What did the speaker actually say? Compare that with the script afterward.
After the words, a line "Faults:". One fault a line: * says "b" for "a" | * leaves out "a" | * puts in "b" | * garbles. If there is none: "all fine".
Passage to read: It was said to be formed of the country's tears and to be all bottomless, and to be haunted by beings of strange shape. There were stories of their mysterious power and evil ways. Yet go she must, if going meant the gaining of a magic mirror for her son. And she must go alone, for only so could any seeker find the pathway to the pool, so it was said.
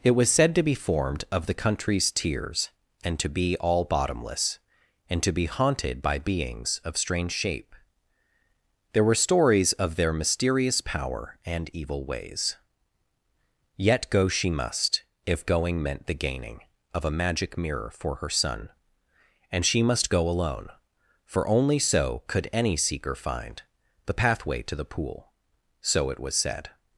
It was said to be formed of the country's tears and to be all bottomless, and to be haunted by beings of strange shape. There were stories of their mysterious power and evil ways. Yet go she must, if going meant the gaining of a magic mirror for her son. And she must go alone, for only so could any seeker find the pathway to the pool, so it was said.
Faults:
all fine